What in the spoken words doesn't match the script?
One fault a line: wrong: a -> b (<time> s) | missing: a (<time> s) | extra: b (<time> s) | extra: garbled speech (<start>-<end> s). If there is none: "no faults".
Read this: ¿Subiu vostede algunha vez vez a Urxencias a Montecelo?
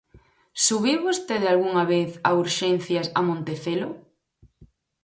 missing: vez (2.1 s)